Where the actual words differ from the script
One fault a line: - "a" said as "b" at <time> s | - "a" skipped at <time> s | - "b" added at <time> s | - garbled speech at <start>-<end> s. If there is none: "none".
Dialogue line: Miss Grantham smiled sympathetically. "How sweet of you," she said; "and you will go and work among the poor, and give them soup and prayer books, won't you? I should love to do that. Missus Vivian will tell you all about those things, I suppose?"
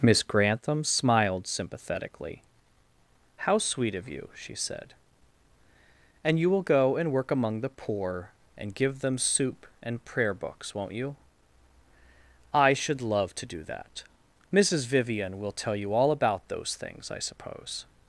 none